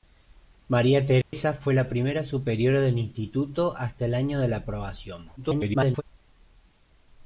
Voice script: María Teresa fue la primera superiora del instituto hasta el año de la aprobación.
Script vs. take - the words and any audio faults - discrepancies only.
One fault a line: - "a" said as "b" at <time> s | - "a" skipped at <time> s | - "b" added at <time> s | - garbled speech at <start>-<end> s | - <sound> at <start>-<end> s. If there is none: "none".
- dropout at 1.2-1.3 s
- garbled speech at 5.4-6.0 s